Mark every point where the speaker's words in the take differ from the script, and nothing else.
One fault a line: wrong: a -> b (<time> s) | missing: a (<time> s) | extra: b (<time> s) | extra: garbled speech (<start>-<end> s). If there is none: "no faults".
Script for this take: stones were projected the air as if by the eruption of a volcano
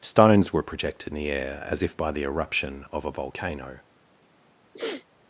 no faults